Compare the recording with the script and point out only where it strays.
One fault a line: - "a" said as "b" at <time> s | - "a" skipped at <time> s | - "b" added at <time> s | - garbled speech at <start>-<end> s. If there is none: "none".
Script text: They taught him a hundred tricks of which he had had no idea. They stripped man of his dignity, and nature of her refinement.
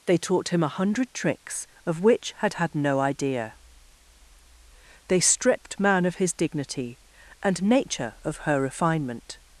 - "he" skipped at 2.3 s